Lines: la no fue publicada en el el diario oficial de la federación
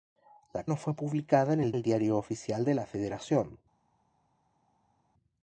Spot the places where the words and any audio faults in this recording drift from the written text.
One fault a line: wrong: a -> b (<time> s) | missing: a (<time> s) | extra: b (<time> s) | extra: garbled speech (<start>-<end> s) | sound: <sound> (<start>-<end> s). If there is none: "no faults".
no faults